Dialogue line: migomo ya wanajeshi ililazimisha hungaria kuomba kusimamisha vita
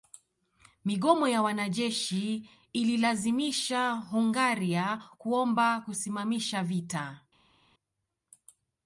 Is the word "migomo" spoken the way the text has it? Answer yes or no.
yes